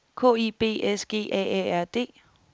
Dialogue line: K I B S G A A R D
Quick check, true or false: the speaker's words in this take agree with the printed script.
true